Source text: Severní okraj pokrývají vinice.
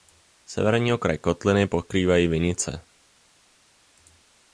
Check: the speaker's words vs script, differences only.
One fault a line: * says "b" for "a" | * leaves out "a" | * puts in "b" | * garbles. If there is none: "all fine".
* puts in "kotliny"